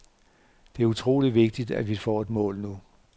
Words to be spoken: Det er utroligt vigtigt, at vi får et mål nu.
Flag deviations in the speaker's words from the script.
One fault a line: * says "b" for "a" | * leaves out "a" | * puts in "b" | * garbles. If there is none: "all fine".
all fine